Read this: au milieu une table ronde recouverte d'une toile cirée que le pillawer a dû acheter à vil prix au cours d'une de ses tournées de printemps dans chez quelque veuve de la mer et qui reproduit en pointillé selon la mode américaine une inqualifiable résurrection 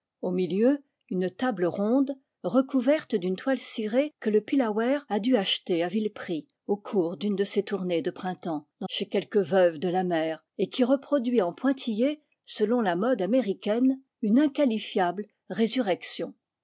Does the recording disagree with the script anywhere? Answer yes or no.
no